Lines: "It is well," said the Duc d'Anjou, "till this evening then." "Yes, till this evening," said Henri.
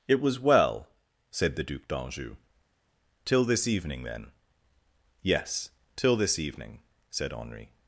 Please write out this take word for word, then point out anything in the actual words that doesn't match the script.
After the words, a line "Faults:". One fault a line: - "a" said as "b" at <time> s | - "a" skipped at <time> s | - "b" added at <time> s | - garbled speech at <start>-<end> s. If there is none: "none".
"It was well," said the Duc d'Anjou, "till this evening then." "Yes, till this evening," said Henri.
Faults:
- "is" said as "was" at 0.2 s